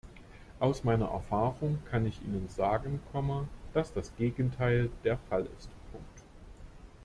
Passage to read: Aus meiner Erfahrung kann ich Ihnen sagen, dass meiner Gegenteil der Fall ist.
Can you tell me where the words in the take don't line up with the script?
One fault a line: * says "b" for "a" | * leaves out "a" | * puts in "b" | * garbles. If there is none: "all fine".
* says "das" for "meiner"